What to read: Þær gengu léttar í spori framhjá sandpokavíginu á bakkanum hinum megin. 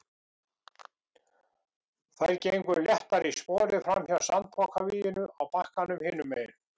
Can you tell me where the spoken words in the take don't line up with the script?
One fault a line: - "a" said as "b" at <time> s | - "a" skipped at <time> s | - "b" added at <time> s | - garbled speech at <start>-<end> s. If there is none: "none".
none